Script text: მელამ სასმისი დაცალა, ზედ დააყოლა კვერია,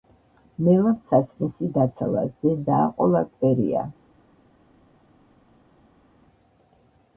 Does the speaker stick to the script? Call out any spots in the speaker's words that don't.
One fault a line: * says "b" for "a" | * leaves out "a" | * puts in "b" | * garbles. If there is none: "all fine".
all fine